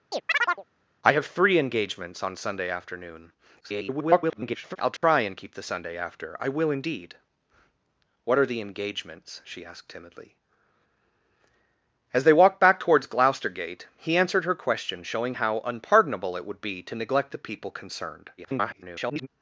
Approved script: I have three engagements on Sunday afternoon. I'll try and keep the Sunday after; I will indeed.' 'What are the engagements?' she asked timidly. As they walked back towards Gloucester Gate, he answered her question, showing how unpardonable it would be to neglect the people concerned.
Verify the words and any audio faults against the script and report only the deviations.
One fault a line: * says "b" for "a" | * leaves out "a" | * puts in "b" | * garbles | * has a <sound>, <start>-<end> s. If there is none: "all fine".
* has a chirp, 0.1-0.6 s
* garbles
* has a dropout, 5.0-5.0 s
* garbles